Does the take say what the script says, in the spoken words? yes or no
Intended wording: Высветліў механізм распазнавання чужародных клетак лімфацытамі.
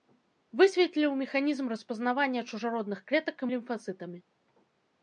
yes